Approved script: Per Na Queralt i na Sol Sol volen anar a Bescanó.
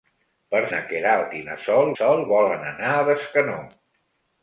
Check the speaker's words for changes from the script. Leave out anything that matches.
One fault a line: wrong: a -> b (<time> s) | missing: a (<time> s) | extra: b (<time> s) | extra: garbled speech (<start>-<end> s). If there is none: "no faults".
no faults